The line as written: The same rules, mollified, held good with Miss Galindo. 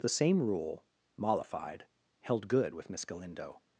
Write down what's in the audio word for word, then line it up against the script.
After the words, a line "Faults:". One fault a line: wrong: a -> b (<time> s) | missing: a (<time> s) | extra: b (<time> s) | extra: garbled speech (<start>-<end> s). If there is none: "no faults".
The same rule, mollified, held good with Miss Galindo.
Faults:
wrong: rules -> rule (0.4 s)